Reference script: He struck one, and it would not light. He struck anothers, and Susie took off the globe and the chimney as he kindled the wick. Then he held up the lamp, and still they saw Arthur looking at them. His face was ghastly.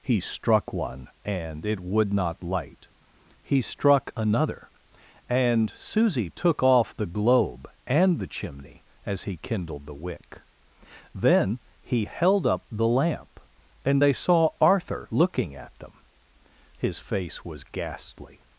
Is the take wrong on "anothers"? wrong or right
wrong